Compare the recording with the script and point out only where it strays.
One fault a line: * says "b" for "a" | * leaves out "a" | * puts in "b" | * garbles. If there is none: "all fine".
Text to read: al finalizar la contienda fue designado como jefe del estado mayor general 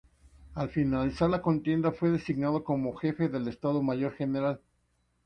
all fine